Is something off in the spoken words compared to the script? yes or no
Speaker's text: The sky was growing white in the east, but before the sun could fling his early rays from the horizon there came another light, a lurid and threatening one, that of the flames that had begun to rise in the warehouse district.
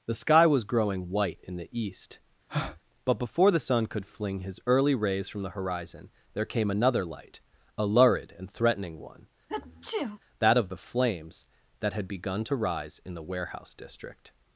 no